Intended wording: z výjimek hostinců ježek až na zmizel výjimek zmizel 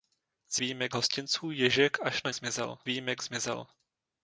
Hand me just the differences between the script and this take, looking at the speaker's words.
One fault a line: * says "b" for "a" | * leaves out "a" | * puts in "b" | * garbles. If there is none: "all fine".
all fine